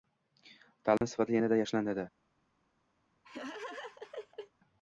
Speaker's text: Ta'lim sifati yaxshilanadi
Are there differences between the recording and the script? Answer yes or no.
yes